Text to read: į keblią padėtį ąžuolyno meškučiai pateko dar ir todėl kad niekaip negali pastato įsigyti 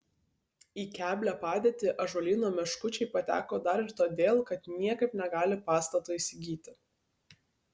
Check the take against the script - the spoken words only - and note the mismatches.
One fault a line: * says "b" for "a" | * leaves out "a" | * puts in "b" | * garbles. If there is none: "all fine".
all fine